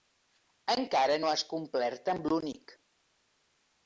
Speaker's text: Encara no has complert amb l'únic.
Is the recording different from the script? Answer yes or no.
no